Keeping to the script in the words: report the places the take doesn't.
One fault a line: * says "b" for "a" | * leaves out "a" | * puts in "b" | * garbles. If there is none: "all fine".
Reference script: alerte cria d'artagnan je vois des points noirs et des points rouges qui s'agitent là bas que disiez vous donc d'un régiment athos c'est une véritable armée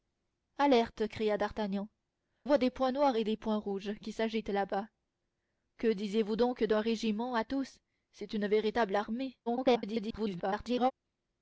* leaves out "je"
* garbles